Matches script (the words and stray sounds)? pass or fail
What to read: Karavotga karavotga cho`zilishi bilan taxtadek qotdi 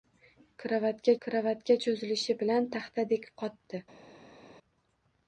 pass